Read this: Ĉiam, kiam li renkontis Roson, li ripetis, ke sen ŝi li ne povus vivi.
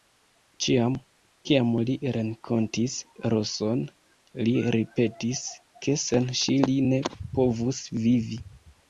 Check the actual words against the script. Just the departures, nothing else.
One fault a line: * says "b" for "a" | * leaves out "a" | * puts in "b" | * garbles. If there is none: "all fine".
all fine